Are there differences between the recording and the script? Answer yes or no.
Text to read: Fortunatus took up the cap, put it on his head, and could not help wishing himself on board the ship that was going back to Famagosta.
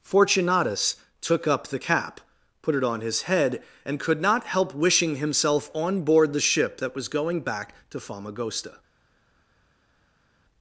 no